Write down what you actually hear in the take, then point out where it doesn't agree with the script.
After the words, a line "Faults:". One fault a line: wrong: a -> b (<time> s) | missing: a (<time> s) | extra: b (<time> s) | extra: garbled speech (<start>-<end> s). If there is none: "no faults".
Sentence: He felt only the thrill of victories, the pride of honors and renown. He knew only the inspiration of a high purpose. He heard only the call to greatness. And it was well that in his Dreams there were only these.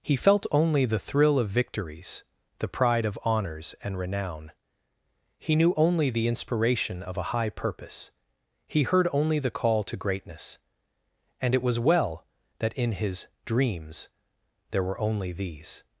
He felt only the thrill of victories, the pride of honors and renown. He knew only the inspiration of a high purpose. He heard only the call to greatness. And it was well that in his Dreams there were only these.
Faults:
no faults